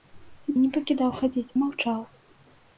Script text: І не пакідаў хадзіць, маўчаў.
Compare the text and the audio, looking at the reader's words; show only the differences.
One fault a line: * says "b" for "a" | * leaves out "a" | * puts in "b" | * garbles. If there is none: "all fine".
all fine